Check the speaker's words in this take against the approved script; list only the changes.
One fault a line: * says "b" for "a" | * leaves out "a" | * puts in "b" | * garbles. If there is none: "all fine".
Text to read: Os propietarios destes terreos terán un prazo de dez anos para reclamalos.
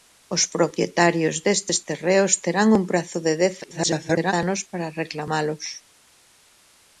* garbles